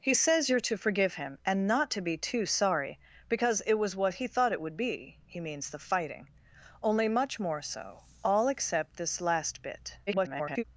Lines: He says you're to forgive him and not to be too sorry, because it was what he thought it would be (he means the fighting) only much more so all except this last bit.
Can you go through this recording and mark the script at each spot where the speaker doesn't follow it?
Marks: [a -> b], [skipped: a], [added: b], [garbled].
He says you're to forgive him and not to be too sorry, because it was what he thought it would be (he means the fighting) only much more so all except this last bit. [garbled]